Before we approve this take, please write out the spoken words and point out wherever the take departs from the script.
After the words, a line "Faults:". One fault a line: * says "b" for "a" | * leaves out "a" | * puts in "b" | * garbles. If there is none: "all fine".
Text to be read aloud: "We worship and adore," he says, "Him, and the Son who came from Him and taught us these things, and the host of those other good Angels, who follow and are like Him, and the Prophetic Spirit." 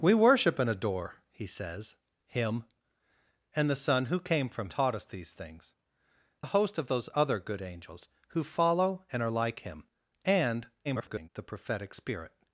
"We worship and adore," he says, "Him, and the Son who came from Taught us these things, the host of those other good Angels, who follow and are like Him, and [garbled] the Prophetic Spirit."
Faults:
* leaves out "Him and"
* leaves out "and"
* garbles